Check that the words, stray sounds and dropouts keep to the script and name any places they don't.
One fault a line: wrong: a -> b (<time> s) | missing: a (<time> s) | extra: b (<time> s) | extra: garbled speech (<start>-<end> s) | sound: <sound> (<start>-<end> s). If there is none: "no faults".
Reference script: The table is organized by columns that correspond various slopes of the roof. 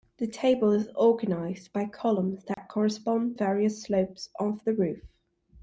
sound: dropout (2.5-2.6 s)